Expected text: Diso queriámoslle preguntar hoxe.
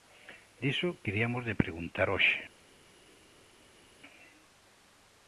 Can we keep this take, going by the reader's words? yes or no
yes